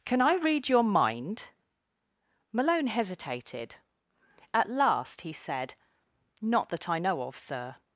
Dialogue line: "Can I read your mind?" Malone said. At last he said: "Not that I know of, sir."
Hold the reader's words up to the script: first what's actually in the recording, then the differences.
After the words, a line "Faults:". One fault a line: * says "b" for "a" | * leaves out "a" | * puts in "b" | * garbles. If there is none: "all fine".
"Can I read your mind?" Malone hesitated. At last he said: "Not that I know of, sir."
Faults:
* says "hesitated" for "said"